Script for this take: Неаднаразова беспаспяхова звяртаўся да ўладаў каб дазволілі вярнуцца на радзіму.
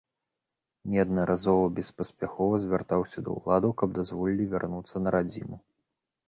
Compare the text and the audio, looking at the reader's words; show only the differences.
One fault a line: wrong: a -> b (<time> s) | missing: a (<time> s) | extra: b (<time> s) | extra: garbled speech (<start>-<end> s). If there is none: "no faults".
no faults